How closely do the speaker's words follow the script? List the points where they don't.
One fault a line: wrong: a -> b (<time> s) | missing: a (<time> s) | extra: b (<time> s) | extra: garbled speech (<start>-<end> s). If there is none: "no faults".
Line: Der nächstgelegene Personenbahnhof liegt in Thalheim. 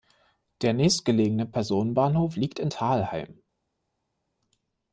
no faults